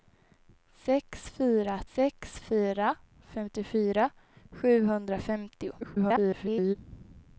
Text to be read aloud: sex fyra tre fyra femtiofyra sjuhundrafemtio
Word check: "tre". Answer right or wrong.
wrong